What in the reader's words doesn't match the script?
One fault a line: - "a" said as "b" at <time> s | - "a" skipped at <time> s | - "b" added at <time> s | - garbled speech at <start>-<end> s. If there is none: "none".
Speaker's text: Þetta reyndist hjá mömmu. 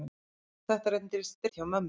none